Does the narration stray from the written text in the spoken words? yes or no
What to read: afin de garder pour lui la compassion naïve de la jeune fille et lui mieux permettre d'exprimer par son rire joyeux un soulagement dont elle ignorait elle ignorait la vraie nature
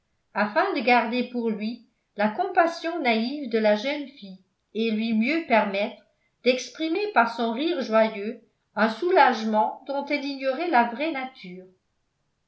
yes